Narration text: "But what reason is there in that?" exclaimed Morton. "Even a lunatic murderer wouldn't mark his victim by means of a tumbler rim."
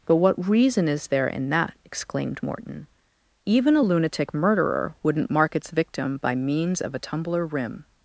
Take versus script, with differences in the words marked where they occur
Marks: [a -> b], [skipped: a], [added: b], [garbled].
"But what reason is there in that?" exclaimed Morton. "Even a lunatic murderer wouldn't mark [his -> its] victim by means of a tumbler rim."